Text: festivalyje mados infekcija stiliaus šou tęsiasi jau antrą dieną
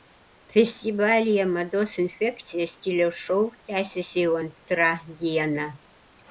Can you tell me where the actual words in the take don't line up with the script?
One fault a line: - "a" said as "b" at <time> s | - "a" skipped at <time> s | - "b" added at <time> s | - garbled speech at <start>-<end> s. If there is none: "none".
none